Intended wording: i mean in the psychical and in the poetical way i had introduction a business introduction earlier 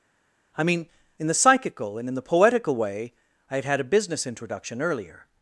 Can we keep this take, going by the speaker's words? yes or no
no